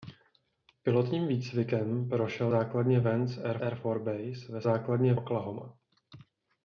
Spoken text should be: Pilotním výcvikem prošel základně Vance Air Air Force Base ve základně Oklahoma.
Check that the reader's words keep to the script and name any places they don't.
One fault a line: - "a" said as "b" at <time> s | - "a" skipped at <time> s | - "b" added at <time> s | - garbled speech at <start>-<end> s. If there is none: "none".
none